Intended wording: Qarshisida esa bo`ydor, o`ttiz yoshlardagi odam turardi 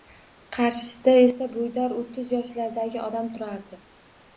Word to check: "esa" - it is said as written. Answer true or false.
true